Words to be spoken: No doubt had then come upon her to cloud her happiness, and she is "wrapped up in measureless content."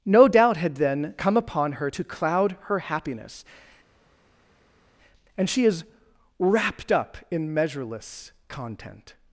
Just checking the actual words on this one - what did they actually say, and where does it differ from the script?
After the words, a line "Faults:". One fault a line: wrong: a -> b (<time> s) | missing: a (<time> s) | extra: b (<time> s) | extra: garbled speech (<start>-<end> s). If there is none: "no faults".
No doubt had then come upon her to cloud her happiness, and she is "wrapped up in measureless content."
Faults:
no faults